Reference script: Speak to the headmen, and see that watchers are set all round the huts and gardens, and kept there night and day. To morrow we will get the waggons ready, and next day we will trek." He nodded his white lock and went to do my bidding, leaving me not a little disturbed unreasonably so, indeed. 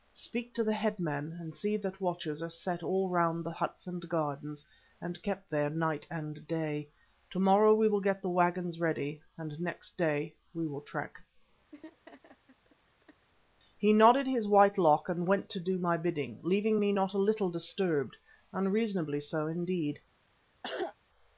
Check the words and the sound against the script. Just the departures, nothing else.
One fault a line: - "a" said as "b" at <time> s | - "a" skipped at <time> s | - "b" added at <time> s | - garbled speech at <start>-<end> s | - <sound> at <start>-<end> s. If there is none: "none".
- laugh at 11.7-13.3 s
- cough at 20.6-21.0 s